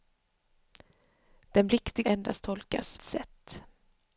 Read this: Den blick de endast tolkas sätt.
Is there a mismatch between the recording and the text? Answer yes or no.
no